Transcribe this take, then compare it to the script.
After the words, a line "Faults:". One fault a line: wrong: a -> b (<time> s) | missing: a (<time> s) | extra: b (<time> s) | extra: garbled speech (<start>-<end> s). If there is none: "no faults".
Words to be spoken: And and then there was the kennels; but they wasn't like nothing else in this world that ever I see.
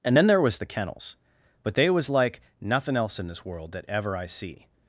And then there was the kennels; but they was like nothing else in this world that ever I see.
Faults:
missing: and (0.2 s)
wrong: wasn't -> was (1.9 s)